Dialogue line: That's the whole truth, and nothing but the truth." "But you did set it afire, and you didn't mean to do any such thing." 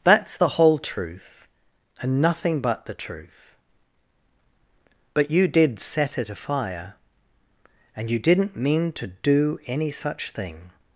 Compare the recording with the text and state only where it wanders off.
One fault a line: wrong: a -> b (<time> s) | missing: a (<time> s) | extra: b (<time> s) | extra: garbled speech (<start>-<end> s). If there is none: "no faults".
no faults